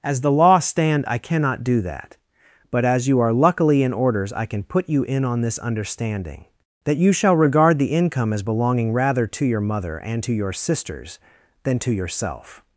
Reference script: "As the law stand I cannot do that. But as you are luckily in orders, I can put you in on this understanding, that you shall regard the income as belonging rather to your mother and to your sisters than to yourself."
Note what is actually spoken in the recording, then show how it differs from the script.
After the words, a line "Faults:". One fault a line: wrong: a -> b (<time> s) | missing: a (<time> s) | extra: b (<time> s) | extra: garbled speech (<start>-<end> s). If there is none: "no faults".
"As the law stand I cannot do that. But as you are luckily in orders, I can put you in on this understanding, that you shall regard the income as belonging rather to your mother and to your sisters than to yourself."
Faults:
no faults